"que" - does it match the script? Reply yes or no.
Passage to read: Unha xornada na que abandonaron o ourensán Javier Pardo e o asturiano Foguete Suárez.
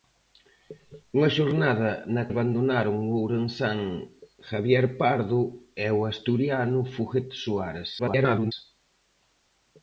no